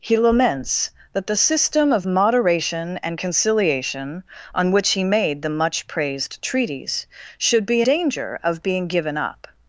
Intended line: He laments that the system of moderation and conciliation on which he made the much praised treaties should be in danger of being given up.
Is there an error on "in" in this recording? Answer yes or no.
yes